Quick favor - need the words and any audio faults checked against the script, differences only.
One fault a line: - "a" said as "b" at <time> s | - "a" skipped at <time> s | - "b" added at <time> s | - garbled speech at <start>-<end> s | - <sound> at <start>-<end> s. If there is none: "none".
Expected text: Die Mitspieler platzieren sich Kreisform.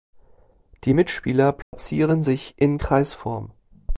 - dropout at 1.6-1.7 s
- "in" added at 2.6 s